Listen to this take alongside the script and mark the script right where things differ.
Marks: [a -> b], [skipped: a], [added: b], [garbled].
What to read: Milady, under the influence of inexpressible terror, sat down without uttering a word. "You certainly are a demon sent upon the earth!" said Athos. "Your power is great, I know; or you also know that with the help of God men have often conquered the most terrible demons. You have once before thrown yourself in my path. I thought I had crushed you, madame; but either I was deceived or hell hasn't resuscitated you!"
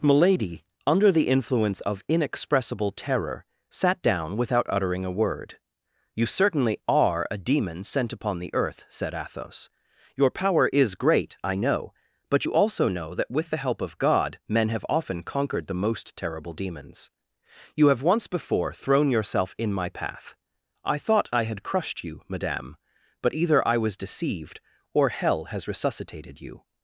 Milady, under the influence of inexpressible terror, sat down without uttering a word. "You certainly are a demon sent upon the earth!" said Athos. "Your power is great, I know; [or -> but] you also know that with the help of God men have often conquered the most terrible demons. You have once before thrown yourself in my path. I thought I had crushed you, madame; but either I was deceived or hell [hasn't -> has] resuscitated you!"